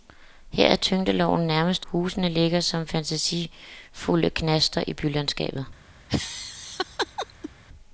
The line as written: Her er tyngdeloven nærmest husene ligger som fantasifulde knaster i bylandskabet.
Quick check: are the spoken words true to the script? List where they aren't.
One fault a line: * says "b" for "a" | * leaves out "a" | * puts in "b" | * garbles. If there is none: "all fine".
all fine